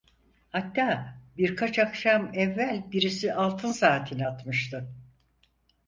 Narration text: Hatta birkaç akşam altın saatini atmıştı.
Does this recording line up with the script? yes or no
no